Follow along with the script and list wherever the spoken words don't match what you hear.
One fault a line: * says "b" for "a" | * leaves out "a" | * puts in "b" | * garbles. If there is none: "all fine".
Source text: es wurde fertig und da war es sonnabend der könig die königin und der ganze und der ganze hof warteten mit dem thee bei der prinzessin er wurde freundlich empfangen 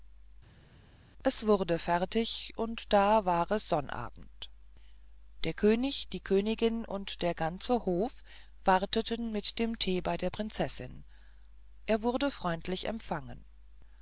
* leaves out "und der ganze"